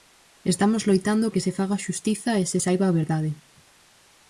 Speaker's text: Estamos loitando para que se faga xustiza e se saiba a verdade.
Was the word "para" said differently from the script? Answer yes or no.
yes